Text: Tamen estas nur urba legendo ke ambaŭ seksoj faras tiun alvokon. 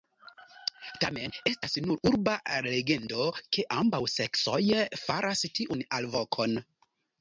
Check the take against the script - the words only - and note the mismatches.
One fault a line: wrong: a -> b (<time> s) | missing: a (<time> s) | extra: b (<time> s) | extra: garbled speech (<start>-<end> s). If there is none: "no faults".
no faults